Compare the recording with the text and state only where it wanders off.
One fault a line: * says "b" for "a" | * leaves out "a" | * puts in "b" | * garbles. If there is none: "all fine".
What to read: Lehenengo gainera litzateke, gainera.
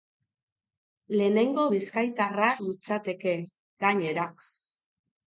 * says "bizkaitarra" for "gainera"